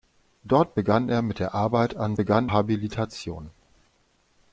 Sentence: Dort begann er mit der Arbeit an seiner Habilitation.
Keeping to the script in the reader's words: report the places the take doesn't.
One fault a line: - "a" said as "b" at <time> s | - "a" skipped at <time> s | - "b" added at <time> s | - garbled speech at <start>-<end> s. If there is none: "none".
- "seiner" said as "begann" at 2.1 s